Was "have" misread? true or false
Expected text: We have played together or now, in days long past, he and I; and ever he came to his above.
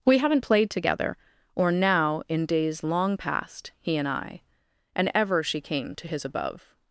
true